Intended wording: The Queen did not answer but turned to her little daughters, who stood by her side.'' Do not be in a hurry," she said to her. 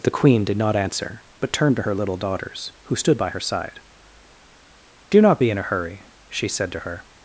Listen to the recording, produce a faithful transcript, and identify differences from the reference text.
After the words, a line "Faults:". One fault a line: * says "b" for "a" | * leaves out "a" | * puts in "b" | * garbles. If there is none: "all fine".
The Queen did not answer but turned to her little daughters, who stood by her side.'' Do not be in a hurry," she said to her.
Faults:
all fine